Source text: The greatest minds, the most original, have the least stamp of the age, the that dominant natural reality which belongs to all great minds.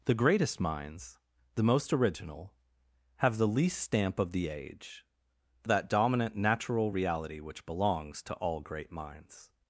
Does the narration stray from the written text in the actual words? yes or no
no